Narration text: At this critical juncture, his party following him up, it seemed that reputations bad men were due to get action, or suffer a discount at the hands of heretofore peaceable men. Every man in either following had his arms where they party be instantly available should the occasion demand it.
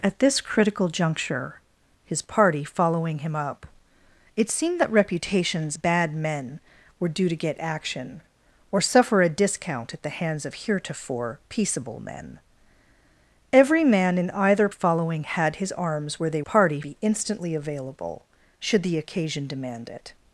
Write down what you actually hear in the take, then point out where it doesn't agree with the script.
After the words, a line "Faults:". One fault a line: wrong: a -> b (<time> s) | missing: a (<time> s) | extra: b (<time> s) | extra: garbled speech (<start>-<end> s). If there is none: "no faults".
At this critical juncture, his party following him up, it seemed that reputations bad men were due to get action, or suffer a discount at the hands of heretofore peaceable men. Every man in either following had his arms where they party be instantly available should the occasion demand it.
Faults:
no faults